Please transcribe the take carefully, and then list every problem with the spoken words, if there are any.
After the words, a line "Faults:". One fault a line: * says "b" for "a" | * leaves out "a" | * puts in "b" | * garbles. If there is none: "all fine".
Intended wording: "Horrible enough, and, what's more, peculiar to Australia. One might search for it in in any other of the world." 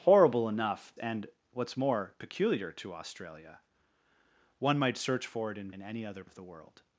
"Horrible enough, and, what's more, peculiar to Australia. One might search for it in in any other of the world."
Faults:
all fine